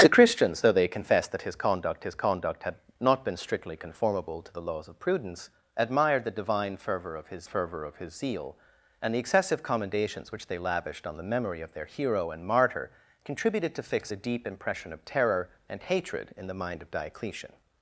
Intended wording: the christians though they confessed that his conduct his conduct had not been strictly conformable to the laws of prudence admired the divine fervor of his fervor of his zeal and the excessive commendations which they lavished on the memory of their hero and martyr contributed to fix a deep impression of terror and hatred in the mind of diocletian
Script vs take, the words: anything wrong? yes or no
no